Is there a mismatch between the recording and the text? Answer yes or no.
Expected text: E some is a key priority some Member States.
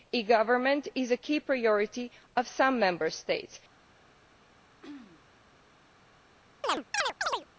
yes